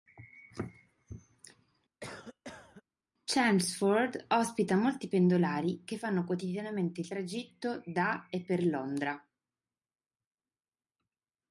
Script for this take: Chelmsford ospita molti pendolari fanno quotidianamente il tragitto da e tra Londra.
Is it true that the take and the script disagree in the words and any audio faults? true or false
true